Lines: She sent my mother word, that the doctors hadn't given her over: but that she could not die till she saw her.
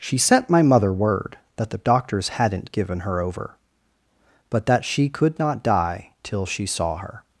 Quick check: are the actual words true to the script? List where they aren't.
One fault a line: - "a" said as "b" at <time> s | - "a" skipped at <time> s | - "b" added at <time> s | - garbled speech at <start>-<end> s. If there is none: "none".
none